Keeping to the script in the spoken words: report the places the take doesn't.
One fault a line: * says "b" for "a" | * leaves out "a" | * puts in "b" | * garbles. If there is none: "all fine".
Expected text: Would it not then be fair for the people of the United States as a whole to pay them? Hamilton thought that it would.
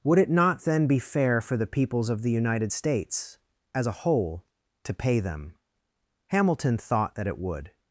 * says "peoples" for "people"